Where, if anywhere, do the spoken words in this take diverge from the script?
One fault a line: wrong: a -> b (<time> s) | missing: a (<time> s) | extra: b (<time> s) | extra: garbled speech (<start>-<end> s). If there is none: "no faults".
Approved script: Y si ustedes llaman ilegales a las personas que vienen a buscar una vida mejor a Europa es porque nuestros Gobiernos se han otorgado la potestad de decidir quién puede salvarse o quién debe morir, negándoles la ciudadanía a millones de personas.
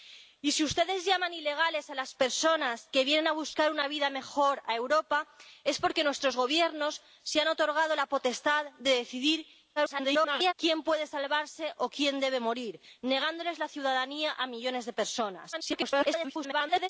extra: garbled speech (9.8-10.5 s)
extra: garbled speech (15.5-16.9 s)